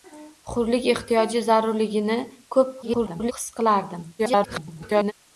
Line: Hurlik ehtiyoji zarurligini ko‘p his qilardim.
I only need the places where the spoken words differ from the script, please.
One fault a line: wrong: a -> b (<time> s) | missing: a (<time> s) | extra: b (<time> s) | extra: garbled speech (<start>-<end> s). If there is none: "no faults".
extra: garbled speech (2.8-3.3 s)
extra: garbled speech (4.2-5.1 s)